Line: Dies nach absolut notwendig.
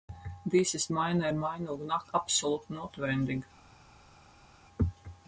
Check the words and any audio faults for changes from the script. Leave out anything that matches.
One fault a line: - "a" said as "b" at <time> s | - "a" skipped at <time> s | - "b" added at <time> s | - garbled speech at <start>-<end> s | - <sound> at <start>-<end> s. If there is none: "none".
- "ist meiner Meinung" added at 0.7 s